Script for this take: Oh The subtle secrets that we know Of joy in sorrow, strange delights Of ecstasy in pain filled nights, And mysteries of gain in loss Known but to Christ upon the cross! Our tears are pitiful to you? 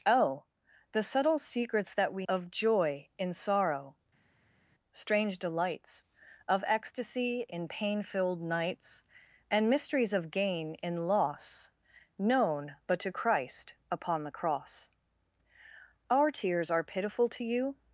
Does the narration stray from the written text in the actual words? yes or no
yes